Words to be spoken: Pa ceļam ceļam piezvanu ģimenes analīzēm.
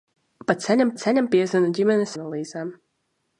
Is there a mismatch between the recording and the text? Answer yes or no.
no